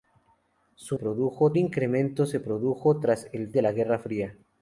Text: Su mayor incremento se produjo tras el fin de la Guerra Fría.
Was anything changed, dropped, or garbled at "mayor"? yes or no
yes